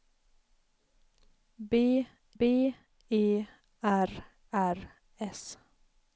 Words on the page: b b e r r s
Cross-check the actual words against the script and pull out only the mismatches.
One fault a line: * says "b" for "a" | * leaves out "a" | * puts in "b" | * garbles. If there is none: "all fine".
all fine